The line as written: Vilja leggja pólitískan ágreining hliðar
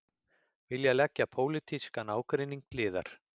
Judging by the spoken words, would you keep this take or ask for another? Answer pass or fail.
pass